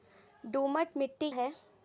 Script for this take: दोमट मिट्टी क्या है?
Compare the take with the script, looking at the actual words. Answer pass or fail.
fail